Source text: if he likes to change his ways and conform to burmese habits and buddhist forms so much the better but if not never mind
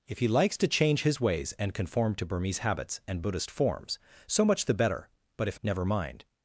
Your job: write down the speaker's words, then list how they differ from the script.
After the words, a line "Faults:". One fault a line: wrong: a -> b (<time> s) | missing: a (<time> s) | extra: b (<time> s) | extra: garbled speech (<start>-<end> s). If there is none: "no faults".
if he likes to change his ways and conform to burmese habits and buddhist forms so much the better but if never mind
Faults:
missing: not (5.6 s)